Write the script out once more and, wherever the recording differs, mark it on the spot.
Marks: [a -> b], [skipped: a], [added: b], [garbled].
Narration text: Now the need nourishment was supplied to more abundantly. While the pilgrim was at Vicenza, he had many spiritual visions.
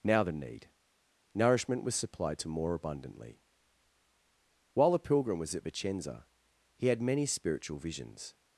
Now the need nourishment was supplied to more abundantly. While the pilgrim was at Vicenza, he had many spiritual visions.